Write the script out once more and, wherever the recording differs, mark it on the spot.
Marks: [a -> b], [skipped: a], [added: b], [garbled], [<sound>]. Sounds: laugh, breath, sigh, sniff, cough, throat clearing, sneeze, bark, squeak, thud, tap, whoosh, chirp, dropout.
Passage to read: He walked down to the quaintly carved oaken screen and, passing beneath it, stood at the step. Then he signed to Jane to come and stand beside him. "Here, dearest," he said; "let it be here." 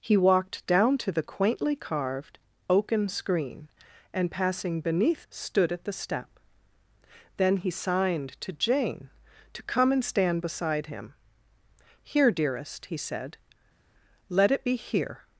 He walked down to the quaintly carved oaken screen and, passing beneath [skipped: it,] stood at the step. Then he signed to Jane to come and stand beside him. "Here, dearest," he said; "let it be here."